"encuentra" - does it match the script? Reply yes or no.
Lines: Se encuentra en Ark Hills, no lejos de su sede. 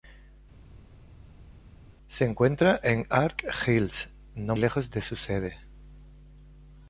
yes